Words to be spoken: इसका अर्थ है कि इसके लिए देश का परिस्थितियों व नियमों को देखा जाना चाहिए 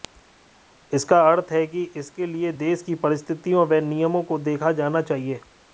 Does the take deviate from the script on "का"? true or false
true